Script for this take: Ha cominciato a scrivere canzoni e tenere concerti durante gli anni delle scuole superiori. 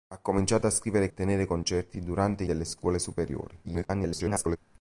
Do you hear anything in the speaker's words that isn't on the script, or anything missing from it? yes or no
yes